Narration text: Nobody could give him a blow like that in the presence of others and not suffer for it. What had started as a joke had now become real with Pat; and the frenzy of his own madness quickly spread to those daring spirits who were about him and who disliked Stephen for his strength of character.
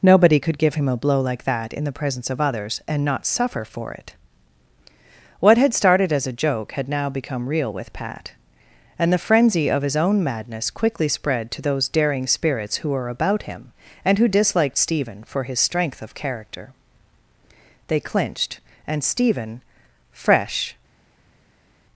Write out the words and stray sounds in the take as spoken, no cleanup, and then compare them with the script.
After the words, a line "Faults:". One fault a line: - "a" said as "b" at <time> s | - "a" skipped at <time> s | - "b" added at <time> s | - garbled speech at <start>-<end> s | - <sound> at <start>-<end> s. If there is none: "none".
Nobody could give him a blow like that in the presence of others and not suffer for it. What had started as a joke had now become real with Pat; and the frenzy of his own madness quickly spread to those daring spirits who were about him and who disliked Stephen for his strength of character. They clinched, and Stephen, fresh
Faults:
- "They clinched and Stephen fresh" added at 17.9 s